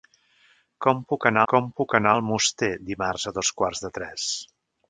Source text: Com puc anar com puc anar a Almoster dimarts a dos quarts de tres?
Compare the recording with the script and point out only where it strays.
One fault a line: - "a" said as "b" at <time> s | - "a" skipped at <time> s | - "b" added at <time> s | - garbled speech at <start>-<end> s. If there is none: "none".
none